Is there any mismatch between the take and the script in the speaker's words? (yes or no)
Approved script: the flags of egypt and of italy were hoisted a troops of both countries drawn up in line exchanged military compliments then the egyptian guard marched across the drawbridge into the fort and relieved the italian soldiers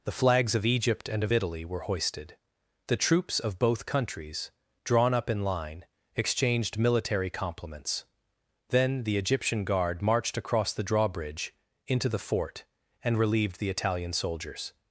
yes